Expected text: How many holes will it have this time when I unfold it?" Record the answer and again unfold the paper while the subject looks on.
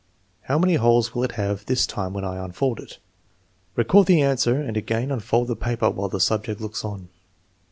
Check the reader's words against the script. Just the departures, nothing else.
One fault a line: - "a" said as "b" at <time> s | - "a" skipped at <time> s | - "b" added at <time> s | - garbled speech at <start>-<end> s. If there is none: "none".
none